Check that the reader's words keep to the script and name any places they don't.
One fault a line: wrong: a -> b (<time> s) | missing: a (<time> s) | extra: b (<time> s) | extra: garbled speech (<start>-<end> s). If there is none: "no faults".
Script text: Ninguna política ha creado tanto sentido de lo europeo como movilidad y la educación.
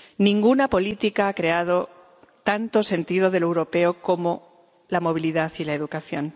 extra: la (4.9 s)